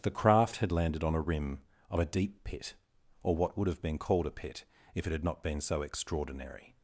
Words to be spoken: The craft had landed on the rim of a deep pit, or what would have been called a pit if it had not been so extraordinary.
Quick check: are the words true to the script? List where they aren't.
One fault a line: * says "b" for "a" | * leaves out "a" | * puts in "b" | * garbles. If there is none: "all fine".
* says "a" for "the"